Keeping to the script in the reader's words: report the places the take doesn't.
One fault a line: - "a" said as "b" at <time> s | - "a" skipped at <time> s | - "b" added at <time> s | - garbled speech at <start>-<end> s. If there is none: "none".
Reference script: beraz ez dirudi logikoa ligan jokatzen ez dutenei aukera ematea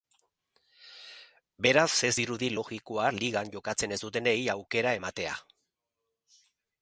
none